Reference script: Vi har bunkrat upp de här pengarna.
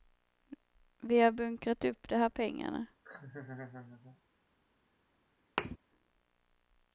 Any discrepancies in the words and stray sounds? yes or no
yes